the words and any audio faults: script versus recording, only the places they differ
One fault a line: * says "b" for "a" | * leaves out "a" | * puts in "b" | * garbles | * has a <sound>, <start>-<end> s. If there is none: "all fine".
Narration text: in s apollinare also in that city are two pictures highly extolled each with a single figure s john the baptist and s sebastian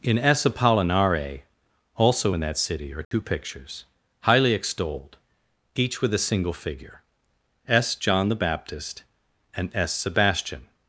* has a dropout, 3.0-3.1 s